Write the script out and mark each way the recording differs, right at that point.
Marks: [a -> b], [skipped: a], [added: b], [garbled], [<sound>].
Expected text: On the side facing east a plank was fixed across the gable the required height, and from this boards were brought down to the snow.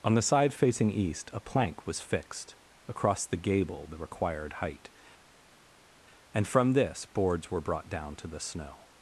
On the side facing east a plank was fixed across the gable the required height, and from this boards were brought down to the snow.